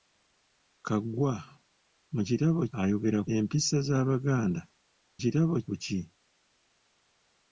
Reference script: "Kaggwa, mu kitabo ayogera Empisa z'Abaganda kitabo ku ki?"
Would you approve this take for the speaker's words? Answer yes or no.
yes